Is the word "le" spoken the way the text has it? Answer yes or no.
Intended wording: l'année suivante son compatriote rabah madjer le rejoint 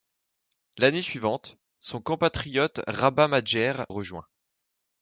no